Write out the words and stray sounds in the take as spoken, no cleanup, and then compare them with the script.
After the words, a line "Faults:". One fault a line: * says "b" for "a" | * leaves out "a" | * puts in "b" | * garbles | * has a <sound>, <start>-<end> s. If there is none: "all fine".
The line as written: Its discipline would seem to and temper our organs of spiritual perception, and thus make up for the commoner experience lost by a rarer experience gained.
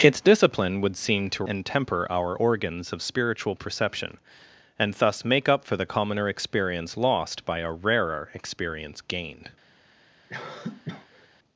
Its discipline would seem to and temper our organs of spiritual perception, and thus make up for the commoner experience lost by a rarer experience gained.
Faults:
* has a cough, 10.3-11.3 s